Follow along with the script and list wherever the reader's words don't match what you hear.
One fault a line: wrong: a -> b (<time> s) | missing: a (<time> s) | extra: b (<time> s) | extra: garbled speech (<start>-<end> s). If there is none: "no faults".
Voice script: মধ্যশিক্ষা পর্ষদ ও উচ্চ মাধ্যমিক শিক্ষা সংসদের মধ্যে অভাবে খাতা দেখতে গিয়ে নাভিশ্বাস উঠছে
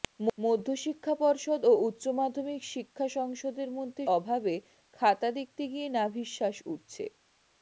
no faults